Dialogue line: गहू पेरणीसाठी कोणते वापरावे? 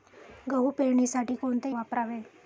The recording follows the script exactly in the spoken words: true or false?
true